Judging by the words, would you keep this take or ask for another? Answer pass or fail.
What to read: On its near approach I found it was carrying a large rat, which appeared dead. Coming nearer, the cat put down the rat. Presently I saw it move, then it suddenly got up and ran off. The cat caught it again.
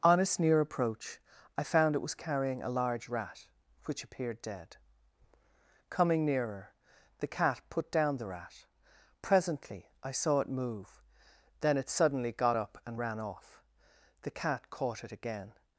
pass